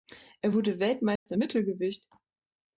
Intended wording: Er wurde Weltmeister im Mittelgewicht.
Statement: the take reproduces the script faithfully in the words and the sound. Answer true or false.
false